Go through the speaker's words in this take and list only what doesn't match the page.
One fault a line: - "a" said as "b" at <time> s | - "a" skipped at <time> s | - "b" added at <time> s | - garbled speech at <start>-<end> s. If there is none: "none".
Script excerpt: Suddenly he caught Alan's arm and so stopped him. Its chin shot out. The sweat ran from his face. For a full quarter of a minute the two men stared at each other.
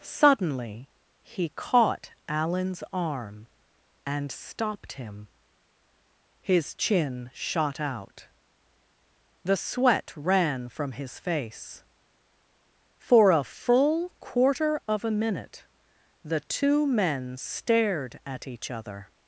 - "so" skipped at 4.3 s
- "Its" said as "His" at 6.4 s